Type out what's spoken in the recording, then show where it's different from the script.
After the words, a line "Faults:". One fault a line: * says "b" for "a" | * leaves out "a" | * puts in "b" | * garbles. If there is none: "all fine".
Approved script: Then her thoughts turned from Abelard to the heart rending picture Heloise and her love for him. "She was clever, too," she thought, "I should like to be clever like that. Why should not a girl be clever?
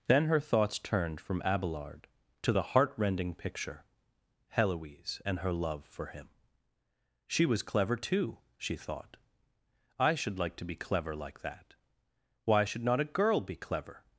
Then her thoughts turned from Abelard to the heart rending picture Heloise and her love for him. "She was clever, too," she thought, "I should like to be clever like that. Why should not a girl be clever?
Faults:
all fine